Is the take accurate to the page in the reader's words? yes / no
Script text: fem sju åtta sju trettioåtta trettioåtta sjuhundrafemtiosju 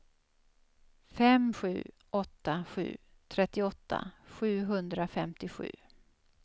no